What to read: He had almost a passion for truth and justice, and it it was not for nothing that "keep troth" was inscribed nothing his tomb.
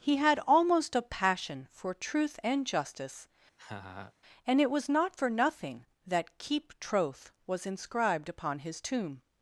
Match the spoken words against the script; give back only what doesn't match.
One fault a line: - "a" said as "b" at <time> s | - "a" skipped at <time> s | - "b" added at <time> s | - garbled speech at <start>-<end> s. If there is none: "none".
- "it" skipped at 4.7 s
- "nothing" said as "upon" at 8.3 s